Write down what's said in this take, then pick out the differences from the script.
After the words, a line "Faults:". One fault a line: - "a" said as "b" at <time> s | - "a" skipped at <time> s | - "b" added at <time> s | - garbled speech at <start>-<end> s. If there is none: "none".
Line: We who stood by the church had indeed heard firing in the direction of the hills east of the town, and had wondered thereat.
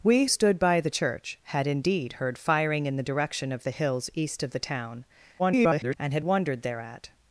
We stood by the church had indeed heard firing in the direction of the hills east of the town, [garbled] and had wondered thereat.
Faults:
- "who" skipped at 0.2 s
- garbled speech at 5.4-6.0 s